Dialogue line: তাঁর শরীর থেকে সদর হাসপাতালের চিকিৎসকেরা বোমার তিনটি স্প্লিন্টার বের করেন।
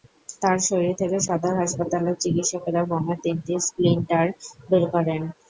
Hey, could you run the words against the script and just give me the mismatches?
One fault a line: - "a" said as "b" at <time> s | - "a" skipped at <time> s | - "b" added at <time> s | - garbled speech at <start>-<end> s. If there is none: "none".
none